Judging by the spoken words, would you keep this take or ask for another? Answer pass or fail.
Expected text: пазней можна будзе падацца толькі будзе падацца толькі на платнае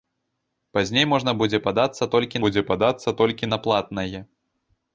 pass